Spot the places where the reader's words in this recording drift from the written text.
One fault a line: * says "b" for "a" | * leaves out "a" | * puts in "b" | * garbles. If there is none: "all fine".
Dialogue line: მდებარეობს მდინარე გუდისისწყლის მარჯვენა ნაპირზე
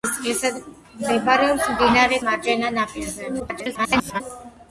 * leaves out "გუდისისწყლის"
* garbles